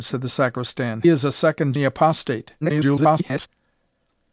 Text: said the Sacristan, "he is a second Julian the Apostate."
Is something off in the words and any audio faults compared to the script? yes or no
yes